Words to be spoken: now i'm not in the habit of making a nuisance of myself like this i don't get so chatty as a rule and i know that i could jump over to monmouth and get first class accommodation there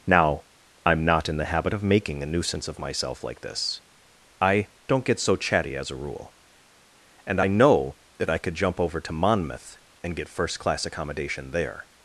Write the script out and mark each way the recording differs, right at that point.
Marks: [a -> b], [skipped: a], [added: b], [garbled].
now i'm not in the habit of making a nuisance of myself like this i don't get so chatty as a rule and i know that i could jump over to monmouth and get first class accommodation there